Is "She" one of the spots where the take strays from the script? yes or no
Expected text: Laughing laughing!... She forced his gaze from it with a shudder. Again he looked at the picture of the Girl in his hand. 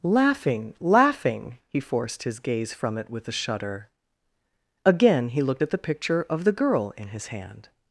yes